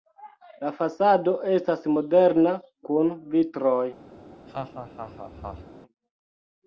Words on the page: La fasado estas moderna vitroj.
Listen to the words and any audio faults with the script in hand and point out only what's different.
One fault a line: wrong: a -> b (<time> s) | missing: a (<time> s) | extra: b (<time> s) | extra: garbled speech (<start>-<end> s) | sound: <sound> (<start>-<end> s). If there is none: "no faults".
extra: kun (2.9 s)
sound: laugh (4.2-5.7 s)